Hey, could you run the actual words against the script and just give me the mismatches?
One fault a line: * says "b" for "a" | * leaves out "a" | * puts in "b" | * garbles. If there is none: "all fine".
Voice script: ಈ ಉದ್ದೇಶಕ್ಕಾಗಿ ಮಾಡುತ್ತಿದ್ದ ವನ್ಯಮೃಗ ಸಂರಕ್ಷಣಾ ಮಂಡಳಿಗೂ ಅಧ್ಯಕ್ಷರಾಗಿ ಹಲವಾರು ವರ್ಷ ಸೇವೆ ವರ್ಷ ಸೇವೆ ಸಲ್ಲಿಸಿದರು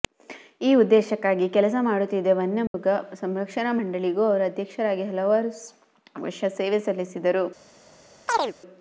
* puts in "ಕೆಲಸ"
* puts in "ಅವರು"
* leaves out "ವರ್ಷ ಸೇವೆ"